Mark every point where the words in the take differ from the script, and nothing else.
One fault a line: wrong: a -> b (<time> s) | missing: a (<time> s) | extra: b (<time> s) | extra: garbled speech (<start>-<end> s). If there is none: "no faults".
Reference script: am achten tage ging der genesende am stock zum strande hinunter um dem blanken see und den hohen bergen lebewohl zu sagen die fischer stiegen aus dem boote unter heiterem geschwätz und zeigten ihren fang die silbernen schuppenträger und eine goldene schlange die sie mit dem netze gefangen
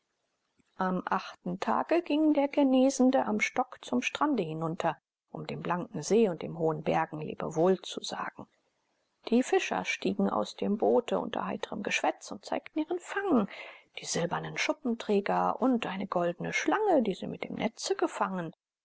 no faults